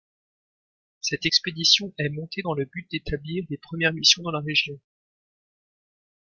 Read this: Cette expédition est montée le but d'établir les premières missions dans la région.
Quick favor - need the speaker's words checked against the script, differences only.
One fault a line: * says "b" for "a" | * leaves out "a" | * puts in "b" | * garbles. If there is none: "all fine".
* puts in "dans"